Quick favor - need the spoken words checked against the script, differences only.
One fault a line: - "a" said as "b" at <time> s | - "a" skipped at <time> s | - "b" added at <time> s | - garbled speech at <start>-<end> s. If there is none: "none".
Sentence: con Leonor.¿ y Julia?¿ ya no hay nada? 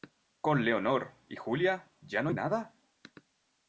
none